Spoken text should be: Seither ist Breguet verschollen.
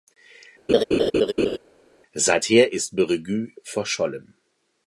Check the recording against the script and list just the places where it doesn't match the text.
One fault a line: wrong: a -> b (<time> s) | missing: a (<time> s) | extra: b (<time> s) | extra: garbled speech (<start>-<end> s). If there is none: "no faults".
no faults